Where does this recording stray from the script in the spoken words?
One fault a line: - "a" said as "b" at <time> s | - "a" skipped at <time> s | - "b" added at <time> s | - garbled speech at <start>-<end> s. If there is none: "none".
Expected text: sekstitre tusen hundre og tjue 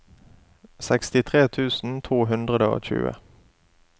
- "to" added at 2.1 s